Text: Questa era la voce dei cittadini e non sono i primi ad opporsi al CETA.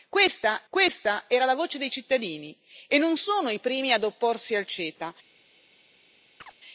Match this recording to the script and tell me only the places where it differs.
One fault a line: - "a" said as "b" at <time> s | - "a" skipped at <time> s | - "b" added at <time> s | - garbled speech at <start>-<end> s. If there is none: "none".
- "questa" added at 0.7 s